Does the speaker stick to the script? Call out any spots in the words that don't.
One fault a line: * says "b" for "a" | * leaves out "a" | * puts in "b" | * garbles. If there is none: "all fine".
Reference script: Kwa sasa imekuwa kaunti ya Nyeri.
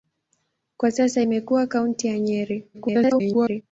* garbles